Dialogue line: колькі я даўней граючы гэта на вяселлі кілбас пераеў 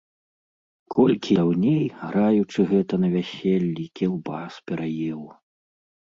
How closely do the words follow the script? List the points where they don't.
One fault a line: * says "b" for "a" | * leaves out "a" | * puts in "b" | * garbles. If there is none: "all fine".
* leaves out "я"